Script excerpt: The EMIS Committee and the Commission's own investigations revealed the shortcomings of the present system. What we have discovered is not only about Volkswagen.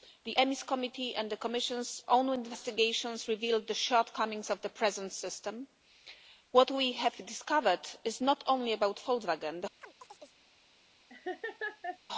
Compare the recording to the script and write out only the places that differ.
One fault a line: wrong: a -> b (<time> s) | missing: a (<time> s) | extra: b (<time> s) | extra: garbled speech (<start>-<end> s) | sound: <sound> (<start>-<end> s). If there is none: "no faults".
sound: chirp (9.8-10.4 s)
sound: laugh (11.1-12.0 s)